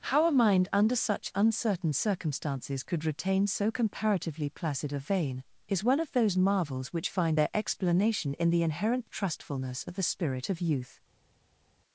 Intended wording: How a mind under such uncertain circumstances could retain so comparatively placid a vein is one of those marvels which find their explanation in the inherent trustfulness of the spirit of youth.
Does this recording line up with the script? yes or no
yes